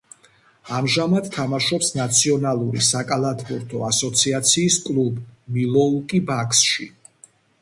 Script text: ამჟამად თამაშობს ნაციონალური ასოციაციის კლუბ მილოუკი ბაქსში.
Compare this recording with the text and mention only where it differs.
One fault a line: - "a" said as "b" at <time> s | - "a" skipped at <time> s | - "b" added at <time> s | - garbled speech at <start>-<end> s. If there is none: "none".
- "საკალათბურთო" added at 2.9 s